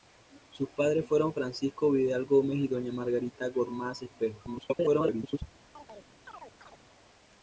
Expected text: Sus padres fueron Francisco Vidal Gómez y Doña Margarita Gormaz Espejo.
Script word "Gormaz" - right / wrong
right